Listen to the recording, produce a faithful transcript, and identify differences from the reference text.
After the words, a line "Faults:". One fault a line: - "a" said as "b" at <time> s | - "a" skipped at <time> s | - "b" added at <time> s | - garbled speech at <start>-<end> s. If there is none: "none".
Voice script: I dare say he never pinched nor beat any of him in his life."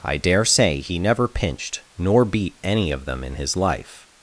I dare say he never pinched nor beat any of them in his life."
Faults:
- "him" said as "them" at 3.0 s